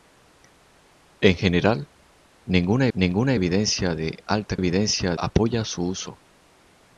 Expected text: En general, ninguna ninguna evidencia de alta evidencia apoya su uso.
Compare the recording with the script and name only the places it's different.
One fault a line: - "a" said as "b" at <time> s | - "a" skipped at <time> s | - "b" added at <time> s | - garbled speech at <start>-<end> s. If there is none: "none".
none